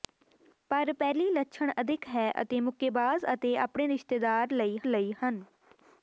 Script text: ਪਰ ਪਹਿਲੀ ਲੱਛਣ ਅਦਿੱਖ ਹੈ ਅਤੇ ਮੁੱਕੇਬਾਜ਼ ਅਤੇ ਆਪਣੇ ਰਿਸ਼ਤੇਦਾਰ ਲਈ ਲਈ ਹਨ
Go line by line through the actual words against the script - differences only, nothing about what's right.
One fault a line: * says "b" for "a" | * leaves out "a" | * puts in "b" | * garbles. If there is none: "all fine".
all fine